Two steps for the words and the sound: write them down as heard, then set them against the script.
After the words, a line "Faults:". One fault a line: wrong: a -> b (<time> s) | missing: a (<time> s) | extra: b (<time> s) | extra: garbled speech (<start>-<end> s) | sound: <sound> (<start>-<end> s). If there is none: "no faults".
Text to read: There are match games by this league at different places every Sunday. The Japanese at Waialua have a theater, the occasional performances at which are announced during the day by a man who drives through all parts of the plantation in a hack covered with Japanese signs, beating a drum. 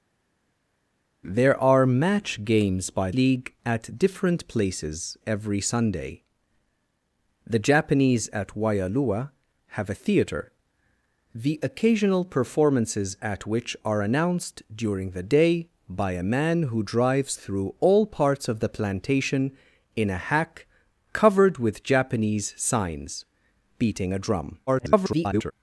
There are match games by league at different places every Sunday. The Japanese at Waialua have a theater, the occasional performances at which are announced during the day by a man who drives through all parts of the plantation in a hack covered with Japanese signs, beating a drum. [garbled]
Faults:
missing: this (3.1 s)
extra: garbled speech (24.7-25.5 s)